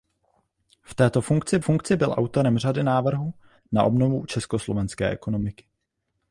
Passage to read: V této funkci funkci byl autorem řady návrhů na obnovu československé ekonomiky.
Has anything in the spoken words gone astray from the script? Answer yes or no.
no